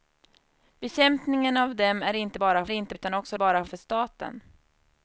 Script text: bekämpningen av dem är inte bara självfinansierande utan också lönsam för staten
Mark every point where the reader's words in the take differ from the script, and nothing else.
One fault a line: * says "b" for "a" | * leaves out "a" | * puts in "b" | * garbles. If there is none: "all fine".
* says "inte" for "självfinansierande"
* says "bara" for "lönsam"